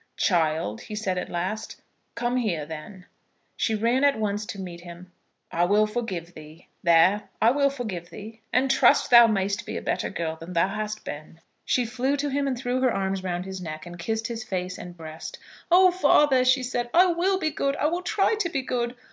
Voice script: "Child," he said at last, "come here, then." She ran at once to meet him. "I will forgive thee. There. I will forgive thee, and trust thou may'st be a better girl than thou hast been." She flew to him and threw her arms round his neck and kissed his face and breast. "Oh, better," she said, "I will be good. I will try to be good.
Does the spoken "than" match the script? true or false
true